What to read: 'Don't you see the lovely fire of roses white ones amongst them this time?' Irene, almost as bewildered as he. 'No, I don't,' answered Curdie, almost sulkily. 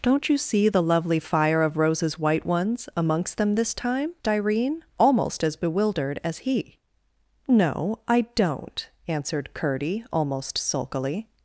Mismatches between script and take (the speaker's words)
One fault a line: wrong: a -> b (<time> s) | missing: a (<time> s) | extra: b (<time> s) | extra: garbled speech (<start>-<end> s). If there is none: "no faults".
no faults